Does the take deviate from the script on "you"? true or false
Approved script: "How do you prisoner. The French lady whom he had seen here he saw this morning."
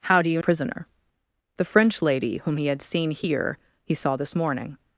false